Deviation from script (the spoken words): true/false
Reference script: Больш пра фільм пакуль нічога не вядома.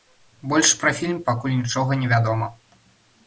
false